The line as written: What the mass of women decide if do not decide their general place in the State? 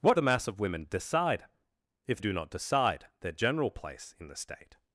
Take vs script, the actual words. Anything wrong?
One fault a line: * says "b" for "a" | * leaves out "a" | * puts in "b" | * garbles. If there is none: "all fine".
all fine